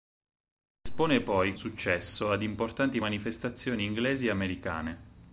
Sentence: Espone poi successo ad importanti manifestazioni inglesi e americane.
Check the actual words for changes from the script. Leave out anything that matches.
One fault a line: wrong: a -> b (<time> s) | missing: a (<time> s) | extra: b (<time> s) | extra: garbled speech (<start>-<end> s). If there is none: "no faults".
no faults